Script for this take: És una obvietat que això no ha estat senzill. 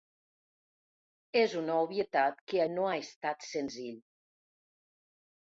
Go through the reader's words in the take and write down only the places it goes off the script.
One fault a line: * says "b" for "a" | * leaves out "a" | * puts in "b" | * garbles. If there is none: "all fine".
* leaves out "això"